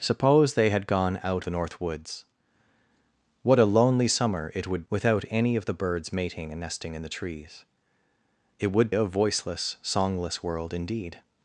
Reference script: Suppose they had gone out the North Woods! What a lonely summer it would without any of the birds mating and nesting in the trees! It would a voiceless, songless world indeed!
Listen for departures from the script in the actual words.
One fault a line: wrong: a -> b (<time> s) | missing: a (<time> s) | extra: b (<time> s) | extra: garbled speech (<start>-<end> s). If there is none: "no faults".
no faults